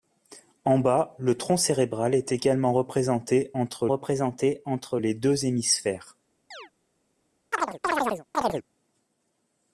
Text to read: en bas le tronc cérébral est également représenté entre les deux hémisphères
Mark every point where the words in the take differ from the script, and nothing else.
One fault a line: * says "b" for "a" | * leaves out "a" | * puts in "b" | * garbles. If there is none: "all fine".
* puts in "représenté entre"